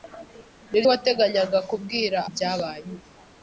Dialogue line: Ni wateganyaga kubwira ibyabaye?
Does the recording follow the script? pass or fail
pass